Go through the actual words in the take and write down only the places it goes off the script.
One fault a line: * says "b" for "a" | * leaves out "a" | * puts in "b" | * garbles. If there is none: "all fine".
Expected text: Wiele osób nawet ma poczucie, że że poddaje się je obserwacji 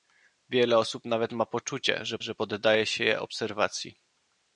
all fine